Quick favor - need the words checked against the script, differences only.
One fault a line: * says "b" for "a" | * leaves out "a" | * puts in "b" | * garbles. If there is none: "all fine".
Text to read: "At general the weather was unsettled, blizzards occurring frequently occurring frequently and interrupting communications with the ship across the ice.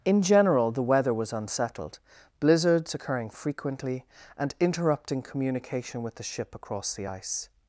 * says "In" for "At"
* leaves out "occurring frequently"
* says "communication" for "communications"